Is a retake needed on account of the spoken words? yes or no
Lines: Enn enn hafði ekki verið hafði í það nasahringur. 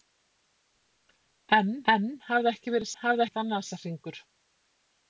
no